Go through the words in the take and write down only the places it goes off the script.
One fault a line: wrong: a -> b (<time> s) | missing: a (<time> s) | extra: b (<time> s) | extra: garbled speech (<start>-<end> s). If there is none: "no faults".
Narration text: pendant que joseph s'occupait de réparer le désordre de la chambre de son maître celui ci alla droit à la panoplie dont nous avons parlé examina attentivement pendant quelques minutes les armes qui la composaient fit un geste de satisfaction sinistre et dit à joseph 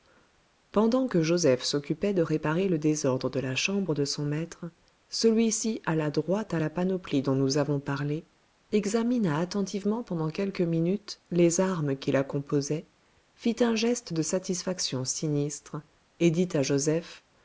no faults